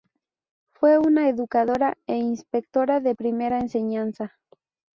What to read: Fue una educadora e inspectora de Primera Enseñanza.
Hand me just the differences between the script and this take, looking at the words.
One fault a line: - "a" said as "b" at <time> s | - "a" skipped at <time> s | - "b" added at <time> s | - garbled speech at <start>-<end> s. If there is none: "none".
none